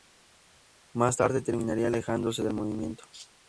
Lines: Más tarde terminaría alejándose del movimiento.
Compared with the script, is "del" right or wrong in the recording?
right